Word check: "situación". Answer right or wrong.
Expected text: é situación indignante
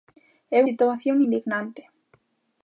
right